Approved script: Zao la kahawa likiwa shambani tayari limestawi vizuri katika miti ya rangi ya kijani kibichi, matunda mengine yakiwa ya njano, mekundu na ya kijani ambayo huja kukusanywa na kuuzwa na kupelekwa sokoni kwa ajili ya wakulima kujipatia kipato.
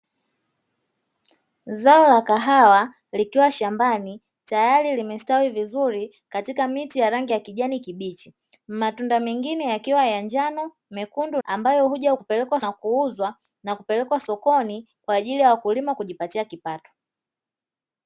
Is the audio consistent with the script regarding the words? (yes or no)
no